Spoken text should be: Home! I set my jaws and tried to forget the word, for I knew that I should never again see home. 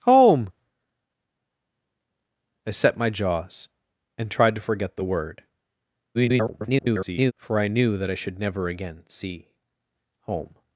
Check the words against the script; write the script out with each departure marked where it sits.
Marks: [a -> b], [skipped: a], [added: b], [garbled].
Home! I set my jaws and tried to forget the word, [garbled] for I knew that I should never again see home.